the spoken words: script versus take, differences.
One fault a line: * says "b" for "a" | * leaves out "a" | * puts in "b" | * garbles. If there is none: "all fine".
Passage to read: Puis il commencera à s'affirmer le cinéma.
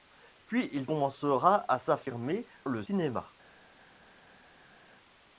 all fine